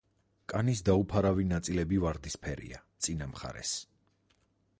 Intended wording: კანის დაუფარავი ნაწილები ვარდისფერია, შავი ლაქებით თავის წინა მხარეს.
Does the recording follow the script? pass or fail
fail